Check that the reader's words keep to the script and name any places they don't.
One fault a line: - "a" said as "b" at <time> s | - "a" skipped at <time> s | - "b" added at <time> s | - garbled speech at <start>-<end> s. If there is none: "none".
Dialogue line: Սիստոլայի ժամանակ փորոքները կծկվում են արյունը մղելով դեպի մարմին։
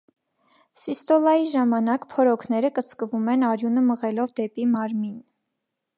none